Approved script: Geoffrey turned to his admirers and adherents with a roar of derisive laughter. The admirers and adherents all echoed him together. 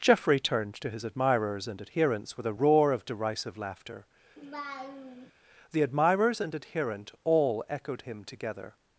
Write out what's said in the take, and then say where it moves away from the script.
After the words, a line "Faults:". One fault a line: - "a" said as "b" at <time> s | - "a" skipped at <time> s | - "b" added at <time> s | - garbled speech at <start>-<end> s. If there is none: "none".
Geoffrey turned to his admirers and adherents with a roar of derisive laughter. The admirers and adherent all echoed him together.
Faults:
- "adherents" said as "adherent" at 6.5 s